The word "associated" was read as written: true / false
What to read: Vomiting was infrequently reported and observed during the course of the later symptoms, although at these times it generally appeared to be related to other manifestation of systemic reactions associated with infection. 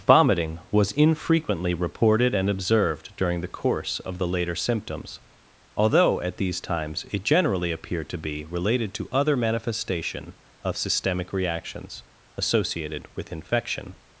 true